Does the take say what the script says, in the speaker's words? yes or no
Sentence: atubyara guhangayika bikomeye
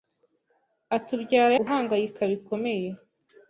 yes